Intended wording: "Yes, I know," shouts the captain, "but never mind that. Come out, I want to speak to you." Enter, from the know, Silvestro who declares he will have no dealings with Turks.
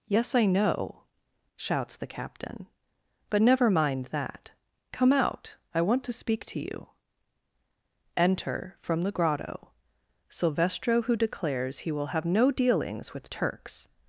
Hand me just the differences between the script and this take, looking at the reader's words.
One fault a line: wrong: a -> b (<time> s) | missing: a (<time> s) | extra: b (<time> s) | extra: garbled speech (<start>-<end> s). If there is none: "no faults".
wrong: know -> grotto (9.1 s)